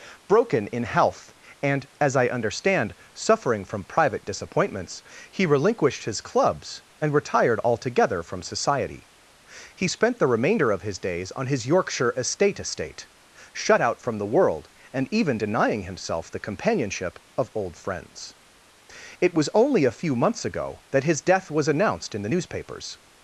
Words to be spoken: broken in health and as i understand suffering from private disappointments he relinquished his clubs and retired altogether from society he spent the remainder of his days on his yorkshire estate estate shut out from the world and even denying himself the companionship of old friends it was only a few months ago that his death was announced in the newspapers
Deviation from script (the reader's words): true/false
false